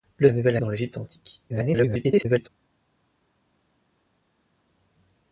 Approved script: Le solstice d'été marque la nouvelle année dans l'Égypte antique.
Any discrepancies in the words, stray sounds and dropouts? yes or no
yes